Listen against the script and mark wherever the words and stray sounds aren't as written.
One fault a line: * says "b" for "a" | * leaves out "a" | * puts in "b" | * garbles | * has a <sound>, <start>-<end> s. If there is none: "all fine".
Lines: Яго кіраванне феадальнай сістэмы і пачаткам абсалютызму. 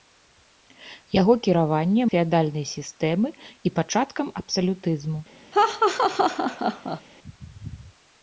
* has a laugh, 5.5-7.0 s